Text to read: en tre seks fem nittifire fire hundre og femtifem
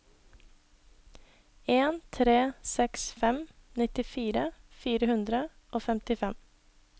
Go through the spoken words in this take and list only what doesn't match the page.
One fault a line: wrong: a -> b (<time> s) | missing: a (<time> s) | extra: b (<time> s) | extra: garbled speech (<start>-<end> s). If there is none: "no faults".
no faults